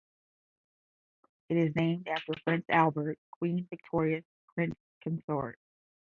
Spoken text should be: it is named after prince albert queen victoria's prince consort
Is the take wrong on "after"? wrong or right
right